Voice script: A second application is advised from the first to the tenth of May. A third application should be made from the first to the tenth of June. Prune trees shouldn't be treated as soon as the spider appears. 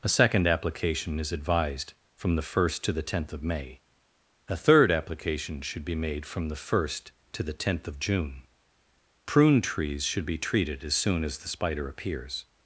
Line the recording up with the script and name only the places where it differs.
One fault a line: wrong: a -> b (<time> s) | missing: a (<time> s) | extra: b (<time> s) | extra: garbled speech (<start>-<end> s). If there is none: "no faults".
wrong: shouldn't -> should (10.0 s)